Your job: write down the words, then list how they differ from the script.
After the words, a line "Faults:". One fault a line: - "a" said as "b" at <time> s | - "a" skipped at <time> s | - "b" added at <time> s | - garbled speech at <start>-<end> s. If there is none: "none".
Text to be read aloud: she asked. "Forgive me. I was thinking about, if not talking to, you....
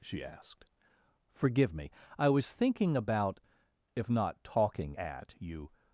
she asked. "Forgive me. I was thinking about, if not talking at, you....
Faults:
- "to" said as "at" at 4.9 s